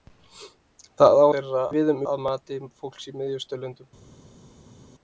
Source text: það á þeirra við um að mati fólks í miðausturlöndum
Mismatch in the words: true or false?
false